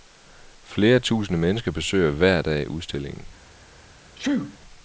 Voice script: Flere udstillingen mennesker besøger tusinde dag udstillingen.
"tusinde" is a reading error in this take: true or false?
true